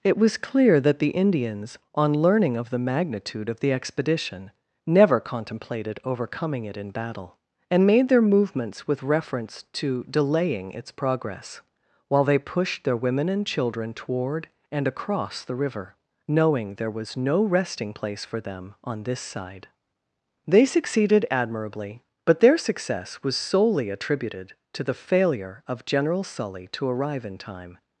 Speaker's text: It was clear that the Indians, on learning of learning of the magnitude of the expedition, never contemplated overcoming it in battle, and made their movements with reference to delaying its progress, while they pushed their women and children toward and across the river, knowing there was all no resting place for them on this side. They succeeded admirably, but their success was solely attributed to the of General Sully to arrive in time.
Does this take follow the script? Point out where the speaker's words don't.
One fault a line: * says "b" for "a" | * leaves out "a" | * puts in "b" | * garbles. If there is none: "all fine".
* leaves out "learning of"
* leaves out "all"
* puts in "failure"